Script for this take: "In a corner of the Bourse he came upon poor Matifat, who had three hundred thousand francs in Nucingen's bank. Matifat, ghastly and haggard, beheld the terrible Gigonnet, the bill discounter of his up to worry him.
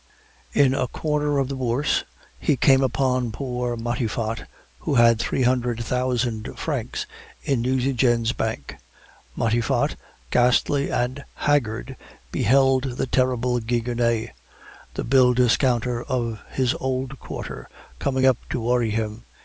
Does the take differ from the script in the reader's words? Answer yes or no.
yes